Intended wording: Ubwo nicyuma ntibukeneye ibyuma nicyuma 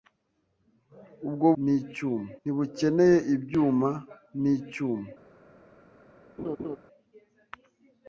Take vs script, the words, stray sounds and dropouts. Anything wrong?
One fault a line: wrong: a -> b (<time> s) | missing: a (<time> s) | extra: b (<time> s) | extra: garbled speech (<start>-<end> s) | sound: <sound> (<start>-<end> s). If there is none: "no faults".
sound: laugh (6.4-6.8 s)